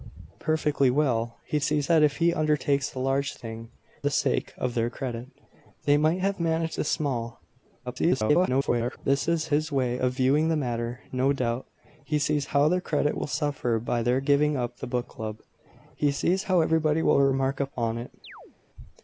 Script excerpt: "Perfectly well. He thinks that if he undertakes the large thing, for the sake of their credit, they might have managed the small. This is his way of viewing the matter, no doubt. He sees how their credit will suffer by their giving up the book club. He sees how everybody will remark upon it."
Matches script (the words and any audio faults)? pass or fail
fail